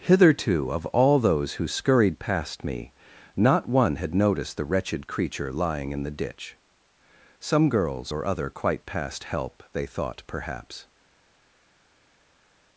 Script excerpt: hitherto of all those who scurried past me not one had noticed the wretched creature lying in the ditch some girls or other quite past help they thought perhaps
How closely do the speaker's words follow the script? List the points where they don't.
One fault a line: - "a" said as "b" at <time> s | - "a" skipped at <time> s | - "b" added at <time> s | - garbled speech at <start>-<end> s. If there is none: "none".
none